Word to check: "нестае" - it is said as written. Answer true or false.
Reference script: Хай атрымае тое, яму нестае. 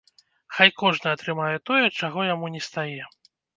true